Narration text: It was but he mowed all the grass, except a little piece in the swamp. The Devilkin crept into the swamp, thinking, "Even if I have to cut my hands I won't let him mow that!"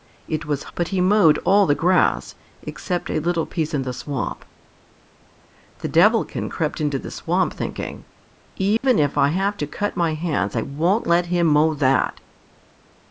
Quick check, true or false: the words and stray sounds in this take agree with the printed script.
false